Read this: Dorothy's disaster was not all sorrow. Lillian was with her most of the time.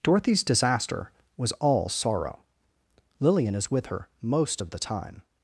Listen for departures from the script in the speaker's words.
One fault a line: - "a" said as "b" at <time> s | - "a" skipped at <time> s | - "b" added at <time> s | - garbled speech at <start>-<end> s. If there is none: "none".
- "not" skipped at 1.5 s
- "was" said as "is" at 3.5 s